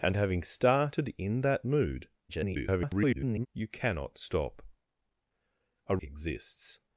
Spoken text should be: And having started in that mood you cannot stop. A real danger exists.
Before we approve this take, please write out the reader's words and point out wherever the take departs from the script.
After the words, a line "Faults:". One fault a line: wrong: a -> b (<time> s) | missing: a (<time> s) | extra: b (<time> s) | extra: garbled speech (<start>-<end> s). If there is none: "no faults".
And having started in that mood [garbled] you cannot stop. A exists.
Faults:
extra: garbled speech (2.3-3.5 s)
missing: real danger (6.0 s)